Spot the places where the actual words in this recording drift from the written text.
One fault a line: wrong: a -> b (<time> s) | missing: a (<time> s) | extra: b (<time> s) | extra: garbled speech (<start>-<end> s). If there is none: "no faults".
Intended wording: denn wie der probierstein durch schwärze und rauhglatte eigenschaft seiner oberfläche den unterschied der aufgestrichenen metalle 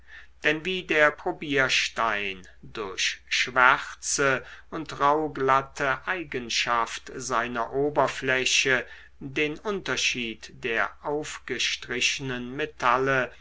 no faults